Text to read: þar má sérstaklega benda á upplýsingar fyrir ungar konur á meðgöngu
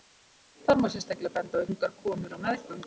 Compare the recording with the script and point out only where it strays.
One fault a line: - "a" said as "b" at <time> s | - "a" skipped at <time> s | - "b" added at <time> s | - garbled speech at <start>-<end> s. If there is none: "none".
- "upplýsingar fyrir" skipped at 1.6 s